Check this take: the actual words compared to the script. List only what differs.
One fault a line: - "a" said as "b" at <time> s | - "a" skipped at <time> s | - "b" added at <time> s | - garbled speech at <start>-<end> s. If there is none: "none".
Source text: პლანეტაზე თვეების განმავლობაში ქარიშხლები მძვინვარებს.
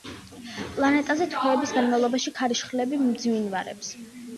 none